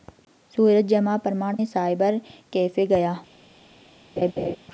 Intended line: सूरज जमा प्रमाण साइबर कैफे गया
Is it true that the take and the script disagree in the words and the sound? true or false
true